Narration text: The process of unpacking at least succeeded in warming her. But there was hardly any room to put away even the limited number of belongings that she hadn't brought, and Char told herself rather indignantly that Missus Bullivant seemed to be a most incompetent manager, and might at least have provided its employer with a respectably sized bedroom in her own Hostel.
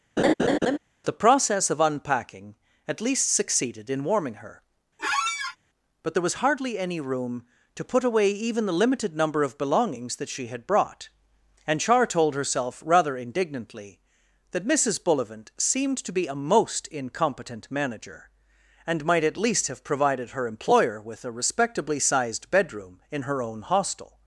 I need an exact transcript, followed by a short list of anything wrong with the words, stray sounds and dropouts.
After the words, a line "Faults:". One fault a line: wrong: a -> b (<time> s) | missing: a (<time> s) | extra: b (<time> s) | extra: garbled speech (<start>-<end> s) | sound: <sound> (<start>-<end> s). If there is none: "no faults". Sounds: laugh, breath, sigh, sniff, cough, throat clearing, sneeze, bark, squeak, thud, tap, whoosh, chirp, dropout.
The process of unpacking at least succeeded in warming her. But there was hardly any room to put away even the limited number of belongings that she had brought, and Char told herself rather indignantly that Missus Bullivant seemed to be a most incompetent manager, and might at least have provided her employer with a respectably sized bedroom in her own Hostel.
Faults:
sound: laugh (0.2-0.8 s)
sound: squeak (5.0-5.6 s)
wrong: hadn't -> had (10.5 s)
wrong: its -> her (20.3 s)